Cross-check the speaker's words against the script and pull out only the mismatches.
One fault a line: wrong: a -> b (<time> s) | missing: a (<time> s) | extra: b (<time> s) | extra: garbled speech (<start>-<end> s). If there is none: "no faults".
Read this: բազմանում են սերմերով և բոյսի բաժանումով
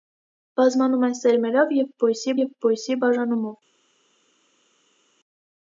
extra: և բոյսի (2.4 s)